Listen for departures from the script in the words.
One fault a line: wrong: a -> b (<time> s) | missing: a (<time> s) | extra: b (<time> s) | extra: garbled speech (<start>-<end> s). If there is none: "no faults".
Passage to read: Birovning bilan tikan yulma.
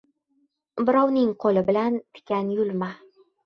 extra: qo‘li (1.4 s)